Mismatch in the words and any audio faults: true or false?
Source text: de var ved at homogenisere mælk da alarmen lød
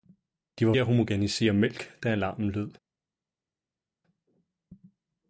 true